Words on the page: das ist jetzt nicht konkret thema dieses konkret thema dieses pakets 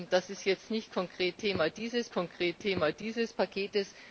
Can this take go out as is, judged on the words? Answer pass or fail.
pass